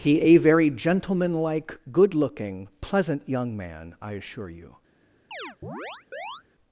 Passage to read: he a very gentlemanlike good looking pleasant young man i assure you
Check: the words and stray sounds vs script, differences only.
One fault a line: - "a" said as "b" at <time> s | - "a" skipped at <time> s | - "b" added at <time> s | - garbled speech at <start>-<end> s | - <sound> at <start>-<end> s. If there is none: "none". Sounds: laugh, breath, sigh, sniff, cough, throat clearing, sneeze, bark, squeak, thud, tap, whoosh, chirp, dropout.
- chirp at 5.3-6.4 s